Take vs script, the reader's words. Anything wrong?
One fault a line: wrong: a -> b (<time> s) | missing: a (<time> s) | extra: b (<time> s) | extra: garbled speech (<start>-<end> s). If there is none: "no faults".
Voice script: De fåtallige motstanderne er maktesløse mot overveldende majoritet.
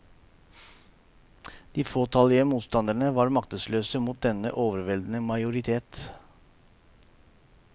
wrong: er -> var (3.2 s)
extra: denne (4.3 s)